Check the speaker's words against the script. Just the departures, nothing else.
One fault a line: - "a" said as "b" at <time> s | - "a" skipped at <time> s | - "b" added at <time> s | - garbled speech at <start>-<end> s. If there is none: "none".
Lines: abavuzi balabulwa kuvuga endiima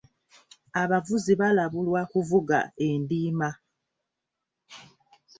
none